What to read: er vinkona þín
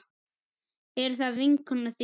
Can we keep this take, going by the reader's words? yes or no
no